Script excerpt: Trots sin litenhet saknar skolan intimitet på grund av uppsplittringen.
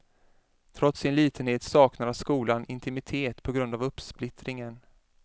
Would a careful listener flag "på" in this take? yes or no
no